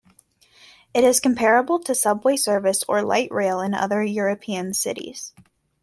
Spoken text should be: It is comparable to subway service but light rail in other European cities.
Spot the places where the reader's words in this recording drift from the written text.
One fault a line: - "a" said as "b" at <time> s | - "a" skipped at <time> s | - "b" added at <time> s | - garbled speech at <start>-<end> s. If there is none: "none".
- "but" said as "or" at 2.9 s